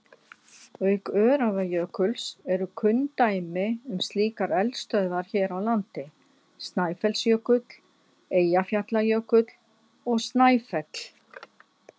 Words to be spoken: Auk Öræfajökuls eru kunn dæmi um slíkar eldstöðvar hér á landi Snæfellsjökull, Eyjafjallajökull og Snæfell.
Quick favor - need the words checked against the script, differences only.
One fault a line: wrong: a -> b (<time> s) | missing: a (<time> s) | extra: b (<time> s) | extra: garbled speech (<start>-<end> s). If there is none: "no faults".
no faults